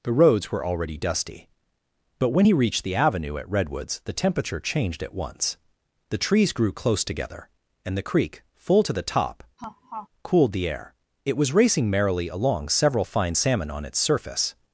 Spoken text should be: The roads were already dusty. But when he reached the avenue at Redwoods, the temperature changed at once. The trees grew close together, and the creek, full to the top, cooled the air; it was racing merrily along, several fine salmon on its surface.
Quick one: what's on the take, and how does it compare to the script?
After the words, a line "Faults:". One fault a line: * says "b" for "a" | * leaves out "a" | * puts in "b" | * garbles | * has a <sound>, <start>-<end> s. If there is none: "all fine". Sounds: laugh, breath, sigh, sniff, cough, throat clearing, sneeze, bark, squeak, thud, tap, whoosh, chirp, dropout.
The roads were already dusty. But when he reached the avenue at Redwoods, the temperature changed at once. The trees grew close together, and the creek, full to the top, cooled the air; it was racing merrily along, several fine salmon on its surface.
Faults:
* has a laugh, 9.6-10.1 s